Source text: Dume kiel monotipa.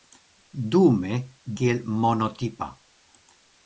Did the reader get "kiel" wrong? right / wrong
right